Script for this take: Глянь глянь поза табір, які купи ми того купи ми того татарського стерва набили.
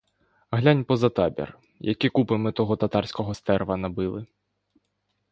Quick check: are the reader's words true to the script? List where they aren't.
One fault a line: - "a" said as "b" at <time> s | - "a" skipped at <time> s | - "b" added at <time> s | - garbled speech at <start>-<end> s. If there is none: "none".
- "глянь" skipped at 0.8 s
- "купи ми того" skipped at 2.8 s